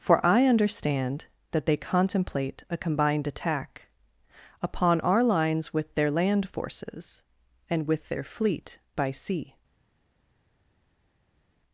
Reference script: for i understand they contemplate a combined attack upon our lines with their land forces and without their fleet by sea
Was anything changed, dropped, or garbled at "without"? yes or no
yes